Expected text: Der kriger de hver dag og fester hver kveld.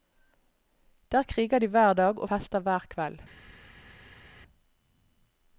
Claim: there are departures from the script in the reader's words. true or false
false